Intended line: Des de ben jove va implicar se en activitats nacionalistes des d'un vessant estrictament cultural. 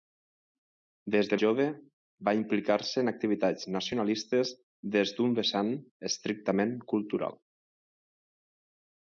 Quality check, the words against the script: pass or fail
fail